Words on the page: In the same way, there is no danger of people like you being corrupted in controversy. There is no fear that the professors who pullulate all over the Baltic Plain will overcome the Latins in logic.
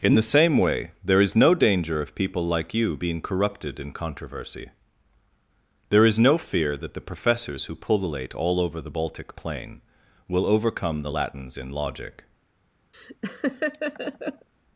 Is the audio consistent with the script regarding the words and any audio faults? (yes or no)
no